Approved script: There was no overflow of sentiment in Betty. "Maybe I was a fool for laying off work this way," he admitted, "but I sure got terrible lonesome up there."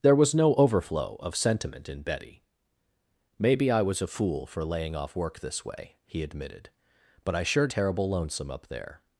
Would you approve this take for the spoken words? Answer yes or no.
no